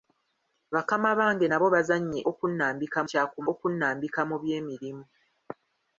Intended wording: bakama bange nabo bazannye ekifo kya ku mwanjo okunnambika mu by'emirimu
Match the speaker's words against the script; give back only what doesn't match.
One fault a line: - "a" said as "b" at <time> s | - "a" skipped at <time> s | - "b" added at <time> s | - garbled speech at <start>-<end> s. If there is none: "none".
- "ekifo" said as "okunnambika" at 2.3 s
- "mwanjo" skipped at 3.4 s